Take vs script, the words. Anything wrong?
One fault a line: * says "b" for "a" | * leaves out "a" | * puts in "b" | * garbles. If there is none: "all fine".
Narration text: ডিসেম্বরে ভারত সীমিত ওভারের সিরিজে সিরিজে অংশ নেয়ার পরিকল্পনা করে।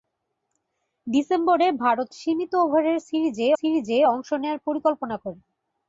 all fine